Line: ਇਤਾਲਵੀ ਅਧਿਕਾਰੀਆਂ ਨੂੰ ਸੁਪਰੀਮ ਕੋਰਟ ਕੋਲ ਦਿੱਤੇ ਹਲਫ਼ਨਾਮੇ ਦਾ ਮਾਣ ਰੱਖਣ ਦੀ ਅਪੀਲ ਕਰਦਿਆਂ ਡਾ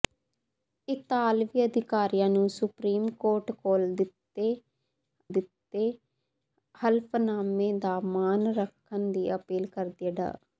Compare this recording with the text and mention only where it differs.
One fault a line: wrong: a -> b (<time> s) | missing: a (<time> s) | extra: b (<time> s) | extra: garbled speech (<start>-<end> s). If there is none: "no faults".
extra: ਦਿੱਤੇ (5.3 s)